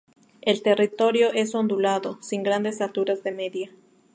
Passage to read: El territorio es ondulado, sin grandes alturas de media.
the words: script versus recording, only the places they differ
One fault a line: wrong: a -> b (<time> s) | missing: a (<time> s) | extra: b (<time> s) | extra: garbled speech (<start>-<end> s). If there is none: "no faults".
no faults